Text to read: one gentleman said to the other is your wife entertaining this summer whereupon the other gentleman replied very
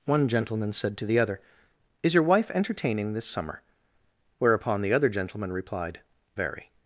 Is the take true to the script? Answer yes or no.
yes